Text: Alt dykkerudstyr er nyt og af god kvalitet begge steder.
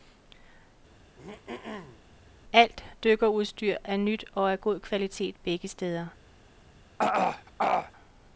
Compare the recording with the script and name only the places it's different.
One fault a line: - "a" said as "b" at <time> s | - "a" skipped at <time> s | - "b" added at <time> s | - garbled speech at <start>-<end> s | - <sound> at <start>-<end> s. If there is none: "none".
- throat clearing at 0.9-2.0 s
- throat clearing at 7.0-7.9 s